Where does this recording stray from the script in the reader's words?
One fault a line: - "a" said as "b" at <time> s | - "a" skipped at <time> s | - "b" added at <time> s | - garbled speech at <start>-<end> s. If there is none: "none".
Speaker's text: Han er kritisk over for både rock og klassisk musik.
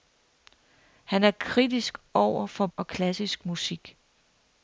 - "både rock" skipped at 2.7 s